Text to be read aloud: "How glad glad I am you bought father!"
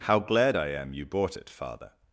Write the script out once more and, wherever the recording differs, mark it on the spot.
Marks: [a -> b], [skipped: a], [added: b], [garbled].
"How glad [skipped: glad] I am you bought [added: it] father!"